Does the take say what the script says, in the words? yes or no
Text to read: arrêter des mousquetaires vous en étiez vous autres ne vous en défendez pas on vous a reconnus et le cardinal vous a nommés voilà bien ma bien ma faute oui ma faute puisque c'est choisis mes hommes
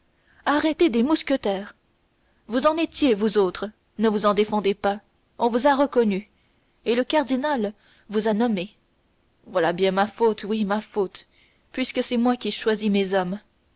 no